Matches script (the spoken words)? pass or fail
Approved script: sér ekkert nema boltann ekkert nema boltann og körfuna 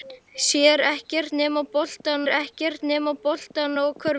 pass